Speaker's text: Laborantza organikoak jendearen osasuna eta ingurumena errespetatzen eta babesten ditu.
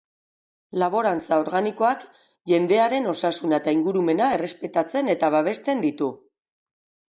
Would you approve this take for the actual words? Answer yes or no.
yes